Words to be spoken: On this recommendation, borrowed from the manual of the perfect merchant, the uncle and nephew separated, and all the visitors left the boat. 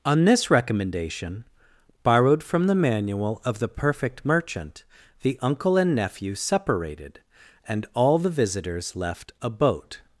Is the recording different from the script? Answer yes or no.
yes